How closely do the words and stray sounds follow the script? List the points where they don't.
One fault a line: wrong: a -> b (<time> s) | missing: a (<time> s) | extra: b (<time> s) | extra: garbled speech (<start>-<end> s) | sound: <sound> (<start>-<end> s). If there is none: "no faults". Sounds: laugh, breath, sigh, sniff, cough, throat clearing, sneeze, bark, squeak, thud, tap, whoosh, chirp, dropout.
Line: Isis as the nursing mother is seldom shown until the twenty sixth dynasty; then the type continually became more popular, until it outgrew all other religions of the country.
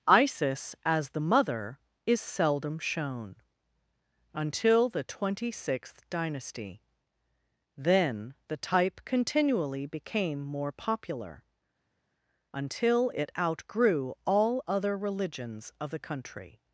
missing: nursing (1.2 s)